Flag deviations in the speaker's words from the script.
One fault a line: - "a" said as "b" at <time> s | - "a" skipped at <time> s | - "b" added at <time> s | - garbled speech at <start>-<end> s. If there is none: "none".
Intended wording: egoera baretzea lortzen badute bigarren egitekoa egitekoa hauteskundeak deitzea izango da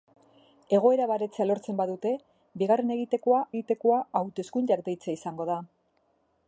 none